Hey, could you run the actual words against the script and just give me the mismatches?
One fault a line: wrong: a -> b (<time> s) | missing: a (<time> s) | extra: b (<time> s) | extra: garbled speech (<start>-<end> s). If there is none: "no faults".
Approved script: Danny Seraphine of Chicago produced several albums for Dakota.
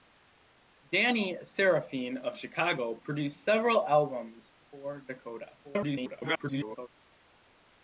extra: garbled speech (5.6-6.9 s)